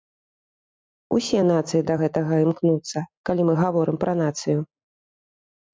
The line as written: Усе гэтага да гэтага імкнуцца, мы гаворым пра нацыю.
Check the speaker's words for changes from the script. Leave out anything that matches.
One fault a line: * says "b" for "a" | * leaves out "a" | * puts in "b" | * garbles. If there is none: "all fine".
* says "нацыі" for "гэтага"
* puts in "калі"